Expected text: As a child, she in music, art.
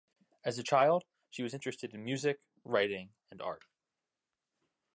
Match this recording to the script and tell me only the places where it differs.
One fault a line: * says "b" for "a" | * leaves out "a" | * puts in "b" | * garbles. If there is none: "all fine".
* puts in "was interested"
* puts in "writing and"